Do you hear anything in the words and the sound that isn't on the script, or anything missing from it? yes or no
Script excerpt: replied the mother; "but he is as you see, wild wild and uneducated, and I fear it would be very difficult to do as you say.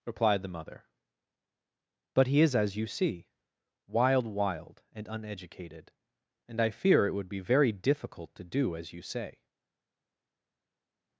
no